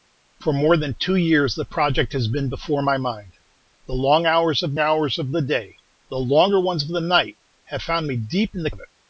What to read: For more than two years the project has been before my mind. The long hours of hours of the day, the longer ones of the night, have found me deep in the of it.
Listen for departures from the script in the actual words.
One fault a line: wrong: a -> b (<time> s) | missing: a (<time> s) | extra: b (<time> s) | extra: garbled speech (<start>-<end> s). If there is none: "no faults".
no faults